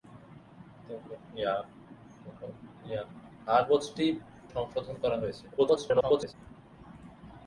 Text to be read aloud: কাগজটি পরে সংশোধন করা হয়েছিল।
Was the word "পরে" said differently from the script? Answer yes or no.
yes